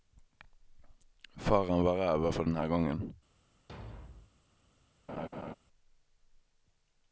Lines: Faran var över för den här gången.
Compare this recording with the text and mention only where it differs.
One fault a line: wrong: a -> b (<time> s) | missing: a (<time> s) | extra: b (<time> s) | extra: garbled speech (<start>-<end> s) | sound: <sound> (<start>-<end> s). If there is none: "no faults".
sound: thud (3.7-4.4 s)
sound: laugh (5.1-5.5 s)